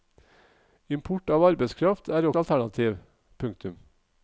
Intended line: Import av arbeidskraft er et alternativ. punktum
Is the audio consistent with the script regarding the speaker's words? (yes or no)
yes